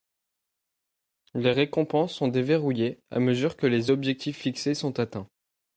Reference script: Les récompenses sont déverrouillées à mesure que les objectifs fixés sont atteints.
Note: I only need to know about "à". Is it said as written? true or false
true